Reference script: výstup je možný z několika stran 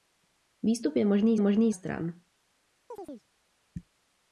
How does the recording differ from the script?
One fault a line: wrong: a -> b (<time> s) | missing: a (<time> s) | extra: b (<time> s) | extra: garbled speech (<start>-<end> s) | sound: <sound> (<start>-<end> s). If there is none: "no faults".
wrong: několika -> možný (1.4 s)
sound: chirp (2.9-3.3 s)